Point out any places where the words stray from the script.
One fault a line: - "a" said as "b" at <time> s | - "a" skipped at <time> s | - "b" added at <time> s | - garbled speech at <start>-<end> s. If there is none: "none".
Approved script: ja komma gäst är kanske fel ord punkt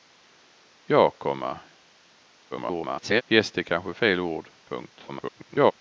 - garbled speech at 2.5-3.2 s
- garbled speech at 5.1-5.7 s